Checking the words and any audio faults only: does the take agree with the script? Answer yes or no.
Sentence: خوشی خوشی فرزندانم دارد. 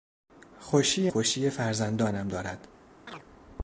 no